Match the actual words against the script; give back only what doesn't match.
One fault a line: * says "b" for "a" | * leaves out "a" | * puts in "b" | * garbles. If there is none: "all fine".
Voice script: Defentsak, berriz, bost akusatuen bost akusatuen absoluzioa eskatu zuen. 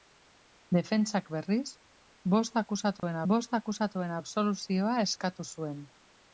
all fine